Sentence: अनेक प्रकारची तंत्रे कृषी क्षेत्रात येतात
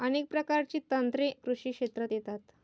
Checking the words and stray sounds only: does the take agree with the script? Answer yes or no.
yes